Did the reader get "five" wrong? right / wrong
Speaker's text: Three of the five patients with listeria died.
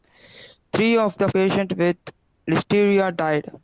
wrong